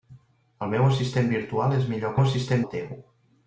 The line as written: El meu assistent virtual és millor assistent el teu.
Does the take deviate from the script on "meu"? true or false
false